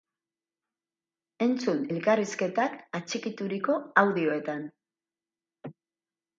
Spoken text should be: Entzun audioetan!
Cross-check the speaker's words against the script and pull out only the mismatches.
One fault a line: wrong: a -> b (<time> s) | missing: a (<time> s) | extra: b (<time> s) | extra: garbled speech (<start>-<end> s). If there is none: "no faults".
extra: elkarrizketak atxikituriko (1.9 s)